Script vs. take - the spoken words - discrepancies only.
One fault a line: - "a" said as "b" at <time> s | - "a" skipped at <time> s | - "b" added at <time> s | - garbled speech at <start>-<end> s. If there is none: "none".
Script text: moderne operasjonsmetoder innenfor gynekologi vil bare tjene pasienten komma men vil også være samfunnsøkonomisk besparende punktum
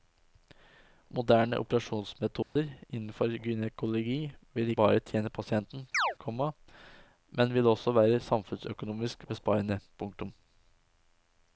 none